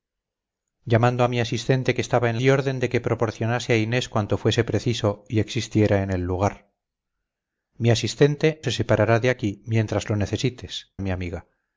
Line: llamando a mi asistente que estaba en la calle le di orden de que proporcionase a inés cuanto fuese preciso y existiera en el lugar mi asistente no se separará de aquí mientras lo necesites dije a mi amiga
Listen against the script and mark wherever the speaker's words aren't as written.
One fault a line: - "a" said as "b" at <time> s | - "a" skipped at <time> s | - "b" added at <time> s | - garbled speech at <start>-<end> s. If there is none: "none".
- "la calle le" skipped at 2.4 s
- "no" skipped at 8.6 s
- "dije" skipped at 10.9 s